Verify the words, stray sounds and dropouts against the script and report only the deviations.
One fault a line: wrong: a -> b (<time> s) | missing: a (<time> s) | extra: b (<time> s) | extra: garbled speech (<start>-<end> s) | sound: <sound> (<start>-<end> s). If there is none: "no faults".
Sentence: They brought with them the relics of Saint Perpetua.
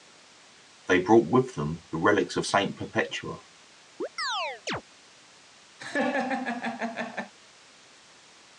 sound: chirp (4.0-4.8 s)
sound: laugh (5.8-7.3 s)